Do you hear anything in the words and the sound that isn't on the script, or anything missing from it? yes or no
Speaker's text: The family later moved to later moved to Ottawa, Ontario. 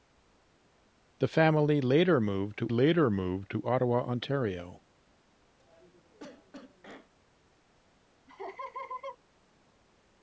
yes